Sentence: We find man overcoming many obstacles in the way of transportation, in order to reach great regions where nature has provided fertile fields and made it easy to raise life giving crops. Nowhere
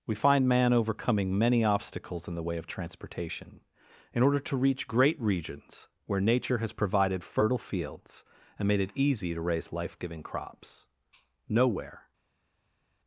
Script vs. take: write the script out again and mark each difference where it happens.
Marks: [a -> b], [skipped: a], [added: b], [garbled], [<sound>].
We find man overcoming many obstacles in the way of transportation, in order to reach great regions where nature has provided fertile fields and made it easy to raise life giving crops. Nowhere